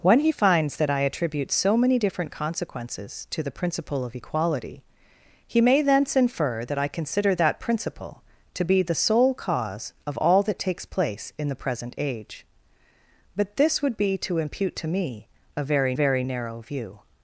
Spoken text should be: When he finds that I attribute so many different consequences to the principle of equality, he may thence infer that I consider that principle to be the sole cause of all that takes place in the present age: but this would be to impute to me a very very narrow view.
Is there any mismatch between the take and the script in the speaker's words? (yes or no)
no